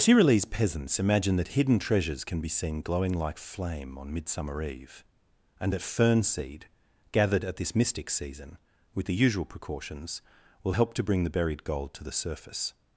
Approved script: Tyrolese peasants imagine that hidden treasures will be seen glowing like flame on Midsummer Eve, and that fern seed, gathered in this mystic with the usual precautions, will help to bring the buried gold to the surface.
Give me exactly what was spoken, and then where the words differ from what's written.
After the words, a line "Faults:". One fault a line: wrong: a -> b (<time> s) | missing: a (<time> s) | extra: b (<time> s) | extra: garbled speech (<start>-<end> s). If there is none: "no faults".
Tyrolese peasants imagine that hidden treasures can be seen glowing like flame on Midsummer Eve, and that fern seed, gathered at this mystic season, with the usual precautions, will help to bring the buried gold to the surface.
Faults:
wrong: will -> can (2.2 s)
wrong: in -> at (7.4 s)
extra: season (8.1 s)